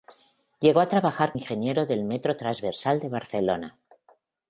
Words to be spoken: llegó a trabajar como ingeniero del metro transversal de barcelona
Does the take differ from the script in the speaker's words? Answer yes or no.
yes